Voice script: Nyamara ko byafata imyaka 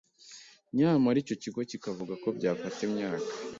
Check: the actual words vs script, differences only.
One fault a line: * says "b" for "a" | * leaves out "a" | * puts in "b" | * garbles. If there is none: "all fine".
* puts in "icyo kigo kikavuga"